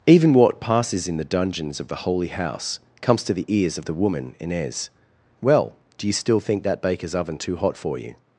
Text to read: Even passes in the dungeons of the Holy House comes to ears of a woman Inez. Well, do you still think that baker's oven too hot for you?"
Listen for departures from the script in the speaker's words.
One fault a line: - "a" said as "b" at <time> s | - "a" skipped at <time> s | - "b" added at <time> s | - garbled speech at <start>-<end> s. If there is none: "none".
- "what" added at 0.3 s
- "the" added at 3.3 s
- "a" said as "the" at 3.8 s